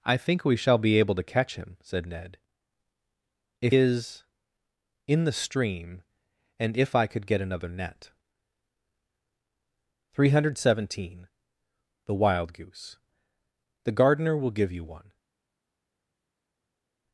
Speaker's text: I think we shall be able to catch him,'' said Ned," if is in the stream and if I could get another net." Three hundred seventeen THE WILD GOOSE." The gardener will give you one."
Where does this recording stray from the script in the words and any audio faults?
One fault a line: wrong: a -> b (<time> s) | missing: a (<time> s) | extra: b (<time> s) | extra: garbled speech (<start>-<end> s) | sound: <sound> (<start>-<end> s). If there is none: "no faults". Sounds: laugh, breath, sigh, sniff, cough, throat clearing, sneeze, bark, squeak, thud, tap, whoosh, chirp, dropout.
no faults